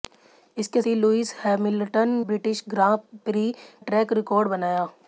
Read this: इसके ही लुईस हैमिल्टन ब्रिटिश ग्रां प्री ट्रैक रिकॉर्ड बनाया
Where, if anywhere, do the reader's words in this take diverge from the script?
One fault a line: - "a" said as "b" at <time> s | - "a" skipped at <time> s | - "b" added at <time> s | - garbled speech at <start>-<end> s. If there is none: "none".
none